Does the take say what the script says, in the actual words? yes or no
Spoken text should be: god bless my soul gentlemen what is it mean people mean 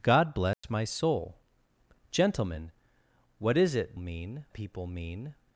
yes